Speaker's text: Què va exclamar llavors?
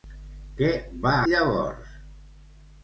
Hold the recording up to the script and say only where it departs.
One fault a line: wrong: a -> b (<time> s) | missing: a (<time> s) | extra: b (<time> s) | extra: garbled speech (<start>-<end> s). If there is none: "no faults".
missing: exclamar (1.1 s)